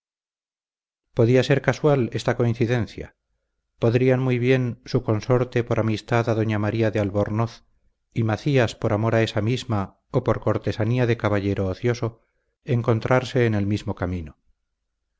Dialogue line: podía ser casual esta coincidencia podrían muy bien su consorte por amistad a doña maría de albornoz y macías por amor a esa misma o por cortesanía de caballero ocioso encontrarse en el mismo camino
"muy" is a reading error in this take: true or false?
false